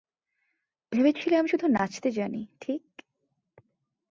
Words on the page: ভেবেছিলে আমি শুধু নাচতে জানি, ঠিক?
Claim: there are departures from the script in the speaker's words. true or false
false